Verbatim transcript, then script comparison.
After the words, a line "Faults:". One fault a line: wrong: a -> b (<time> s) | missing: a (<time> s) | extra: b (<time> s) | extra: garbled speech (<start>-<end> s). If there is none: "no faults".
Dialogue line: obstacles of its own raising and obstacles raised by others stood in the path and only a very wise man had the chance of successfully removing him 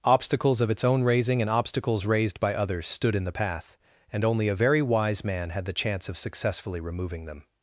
obstacles of its own raising and obstacles raised by others stood in the path and only a very wise man had the chance of successfully removing them
Faults:
wrong: him -> them (7.2 s)